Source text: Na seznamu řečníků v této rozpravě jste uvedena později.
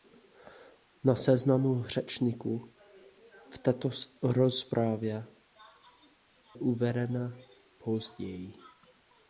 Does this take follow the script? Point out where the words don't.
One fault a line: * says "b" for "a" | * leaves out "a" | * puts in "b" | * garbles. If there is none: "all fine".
* leaves out "jste"